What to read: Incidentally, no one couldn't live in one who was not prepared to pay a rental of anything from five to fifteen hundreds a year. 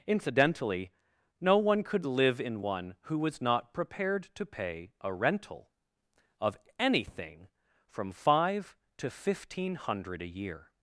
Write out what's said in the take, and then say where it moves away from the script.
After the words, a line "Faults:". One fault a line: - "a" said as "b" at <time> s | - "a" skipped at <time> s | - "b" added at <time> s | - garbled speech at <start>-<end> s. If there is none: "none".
Incidentally, no one could live in one who was not prepared to pay a rental of anything from five to fifteen hundred a year.
Faults:
- "couldn't" said as "could" at 1.8 s
- "hundreds" said as "hundred" at 9.7 s